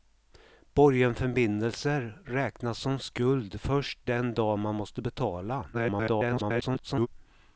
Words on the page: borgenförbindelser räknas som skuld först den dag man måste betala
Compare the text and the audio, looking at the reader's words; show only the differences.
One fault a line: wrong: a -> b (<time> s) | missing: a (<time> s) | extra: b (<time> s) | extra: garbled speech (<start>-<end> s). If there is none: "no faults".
extra: garbled speech (5.7-7.1 s)